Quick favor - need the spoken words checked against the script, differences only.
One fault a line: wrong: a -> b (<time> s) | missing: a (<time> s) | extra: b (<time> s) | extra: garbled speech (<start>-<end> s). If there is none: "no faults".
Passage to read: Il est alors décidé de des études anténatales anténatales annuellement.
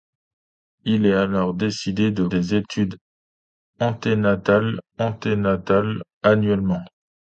no faults